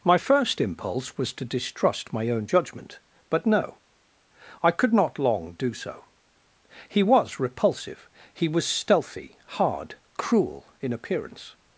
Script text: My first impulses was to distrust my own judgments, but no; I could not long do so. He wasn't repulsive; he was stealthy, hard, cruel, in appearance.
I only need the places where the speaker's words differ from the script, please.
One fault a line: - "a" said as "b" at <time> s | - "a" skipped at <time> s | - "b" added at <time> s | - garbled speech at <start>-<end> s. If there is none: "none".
- "impulses" said as "impulse" at 0.6 s
- "judgments" said as "judgment" at 2.4 s
- "wasn't" said as "was" at 7.0 s